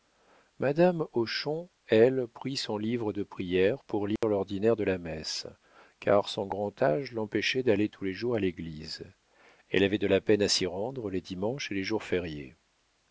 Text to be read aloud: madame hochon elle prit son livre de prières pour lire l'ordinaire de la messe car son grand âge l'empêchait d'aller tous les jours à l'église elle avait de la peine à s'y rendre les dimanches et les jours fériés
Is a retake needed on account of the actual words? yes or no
no